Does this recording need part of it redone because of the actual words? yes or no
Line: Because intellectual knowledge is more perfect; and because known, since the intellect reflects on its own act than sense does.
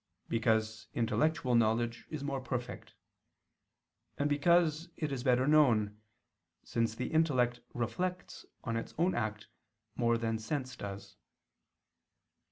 yes